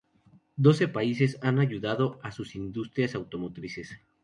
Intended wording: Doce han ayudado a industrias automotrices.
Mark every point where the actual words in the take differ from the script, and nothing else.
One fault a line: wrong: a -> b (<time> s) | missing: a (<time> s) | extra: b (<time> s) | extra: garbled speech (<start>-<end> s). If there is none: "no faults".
extra: países (0.9 s)
extra: sus (2.3 s)